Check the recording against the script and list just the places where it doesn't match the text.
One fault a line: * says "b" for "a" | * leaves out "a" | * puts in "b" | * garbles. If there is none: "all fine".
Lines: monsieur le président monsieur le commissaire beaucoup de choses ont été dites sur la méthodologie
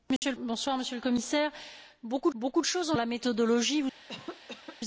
* leaves out "président"
* puts in "beaucoup"
* leaves out "été dites sur"